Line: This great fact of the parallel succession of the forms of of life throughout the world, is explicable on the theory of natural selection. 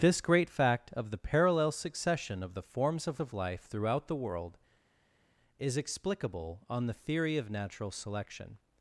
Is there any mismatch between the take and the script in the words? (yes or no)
no